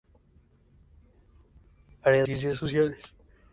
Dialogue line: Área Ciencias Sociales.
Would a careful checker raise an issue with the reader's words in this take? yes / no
no